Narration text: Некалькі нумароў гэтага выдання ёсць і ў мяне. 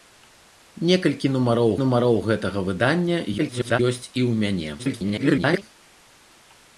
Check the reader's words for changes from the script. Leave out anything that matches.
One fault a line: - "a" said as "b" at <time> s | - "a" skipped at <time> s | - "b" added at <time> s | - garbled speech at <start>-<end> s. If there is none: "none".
- "нумароў" added at 1.8 s
- garbled speech at 3.4-3.8 s
- garbled speech at 4.8-5.6 s